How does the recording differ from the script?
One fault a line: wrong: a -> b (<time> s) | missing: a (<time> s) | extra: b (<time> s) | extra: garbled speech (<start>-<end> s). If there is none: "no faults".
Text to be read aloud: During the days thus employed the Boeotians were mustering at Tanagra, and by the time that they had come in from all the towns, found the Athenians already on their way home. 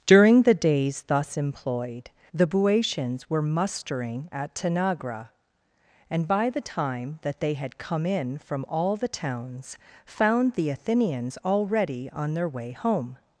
no faults